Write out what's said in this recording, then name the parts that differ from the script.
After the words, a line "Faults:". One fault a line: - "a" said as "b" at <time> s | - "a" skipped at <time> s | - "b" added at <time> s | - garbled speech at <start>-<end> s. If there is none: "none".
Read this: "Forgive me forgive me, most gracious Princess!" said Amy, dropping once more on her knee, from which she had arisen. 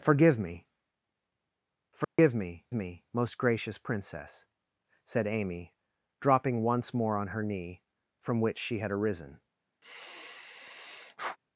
"Forgive me forgive me me, most gracious Princess!" said Amy, dropping once more on her knee, from which she had arisen.
Faults:
- "me" added at 2.7 s